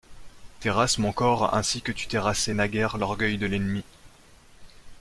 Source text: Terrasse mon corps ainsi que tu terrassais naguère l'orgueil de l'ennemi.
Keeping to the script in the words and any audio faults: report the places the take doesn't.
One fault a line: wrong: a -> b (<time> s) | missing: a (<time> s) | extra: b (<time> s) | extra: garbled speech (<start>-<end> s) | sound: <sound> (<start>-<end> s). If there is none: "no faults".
no faults